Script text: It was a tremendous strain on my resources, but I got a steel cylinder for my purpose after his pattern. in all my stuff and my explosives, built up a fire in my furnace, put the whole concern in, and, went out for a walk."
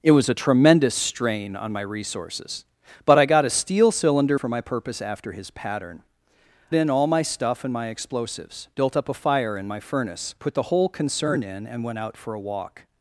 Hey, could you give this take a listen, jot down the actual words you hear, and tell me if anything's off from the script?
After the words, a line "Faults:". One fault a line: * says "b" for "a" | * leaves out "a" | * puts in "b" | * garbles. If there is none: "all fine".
It was a tremendous strain on my resources, but I got a steel cylinder for my purpose after his pattern. in all my stuff and my explosives, built up a fire in my furnace, put the whole concern in, and, went out for a walk."
Faults:
all fine